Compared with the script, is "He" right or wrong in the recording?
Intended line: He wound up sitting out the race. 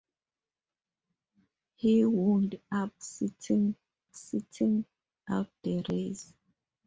right